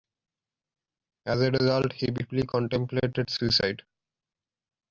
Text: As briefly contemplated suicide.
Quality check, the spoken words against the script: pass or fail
fail